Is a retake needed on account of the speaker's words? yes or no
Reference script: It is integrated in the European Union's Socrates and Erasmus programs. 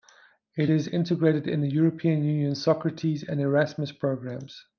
no